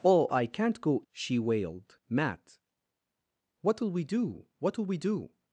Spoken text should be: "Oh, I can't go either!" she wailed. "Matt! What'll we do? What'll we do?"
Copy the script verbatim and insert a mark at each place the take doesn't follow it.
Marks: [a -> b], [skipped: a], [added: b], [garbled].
"Oh, I can't go [skipped: either!"] she wailed. "Matt! What'll we do? What'll we do?"